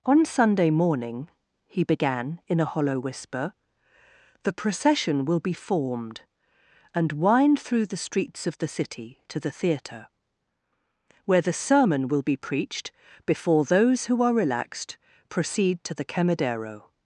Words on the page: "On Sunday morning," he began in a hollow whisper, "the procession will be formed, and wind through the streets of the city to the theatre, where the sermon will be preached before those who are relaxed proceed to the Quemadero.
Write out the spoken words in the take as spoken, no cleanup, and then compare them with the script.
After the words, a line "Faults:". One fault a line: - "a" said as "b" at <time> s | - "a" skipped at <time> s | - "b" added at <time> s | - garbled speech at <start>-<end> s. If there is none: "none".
"On Sunday morning," he began in a hollow whisper, "the procession will be formed, and wind through the streets of the city to the theatre, where the sermon will be preached before those who are relaxed proceed to the Quemadero.
Faults:
none